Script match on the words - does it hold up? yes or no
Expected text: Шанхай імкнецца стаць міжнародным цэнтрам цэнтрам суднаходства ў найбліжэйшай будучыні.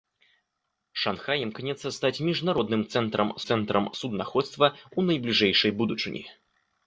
yes